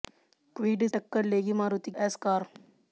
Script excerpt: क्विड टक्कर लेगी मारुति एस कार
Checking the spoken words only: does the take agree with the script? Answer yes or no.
yes